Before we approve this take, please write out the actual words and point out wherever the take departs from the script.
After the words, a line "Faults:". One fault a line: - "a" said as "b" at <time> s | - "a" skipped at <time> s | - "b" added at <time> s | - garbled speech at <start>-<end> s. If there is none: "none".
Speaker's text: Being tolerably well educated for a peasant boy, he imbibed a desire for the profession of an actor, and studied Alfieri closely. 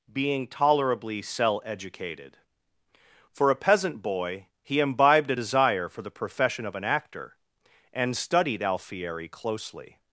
Being tolerably cell educated for a peasant boy, he imbibed a desire for the profession of an actor, and studied Alfieri closely.
Faults:
- "well" said as "cell" at 1.2 s